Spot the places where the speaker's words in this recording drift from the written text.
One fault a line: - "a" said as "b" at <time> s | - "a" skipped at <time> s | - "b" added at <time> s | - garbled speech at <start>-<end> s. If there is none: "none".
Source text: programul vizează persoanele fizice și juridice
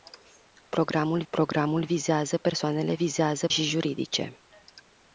- "programul" added at 1.3 s
- "fizice" said as "vizează" at 2.9 s